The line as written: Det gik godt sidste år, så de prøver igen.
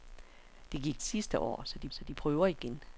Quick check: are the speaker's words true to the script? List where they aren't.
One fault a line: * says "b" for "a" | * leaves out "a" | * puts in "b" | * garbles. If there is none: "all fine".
* leaves out "godt"
* puts in "så de"